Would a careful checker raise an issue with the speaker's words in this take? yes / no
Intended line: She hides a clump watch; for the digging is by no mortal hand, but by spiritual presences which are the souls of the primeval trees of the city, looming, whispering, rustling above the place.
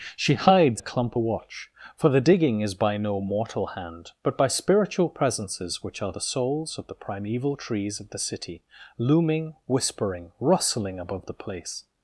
no